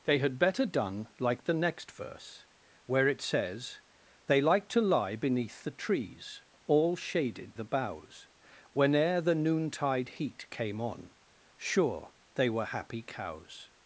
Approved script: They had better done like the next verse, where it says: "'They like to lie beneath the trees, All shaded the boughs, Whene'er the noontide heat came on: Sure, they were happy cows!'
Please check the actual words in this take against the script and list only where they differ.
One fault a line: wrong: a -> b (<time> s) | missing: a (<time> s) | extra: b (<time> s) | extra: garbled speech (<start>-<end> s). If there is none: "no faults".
no faults